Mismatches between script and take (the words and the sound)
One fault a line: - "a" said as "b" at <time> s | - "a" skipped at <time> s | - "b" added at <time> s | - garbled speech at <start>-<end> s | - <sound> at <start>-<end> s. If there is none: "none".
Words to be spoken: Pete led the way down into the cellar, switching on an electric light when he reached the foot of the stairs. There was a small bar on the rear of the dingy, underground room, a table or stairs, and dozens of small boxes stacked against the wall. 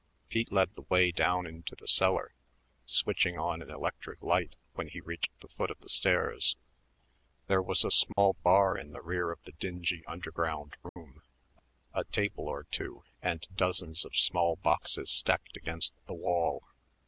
- dropout at 8.1-8.2 s
- "on" said as "in" at 8.8 s
- dropout at 10.9-11.0 s
- "stairs" said as "two" at 12.6 s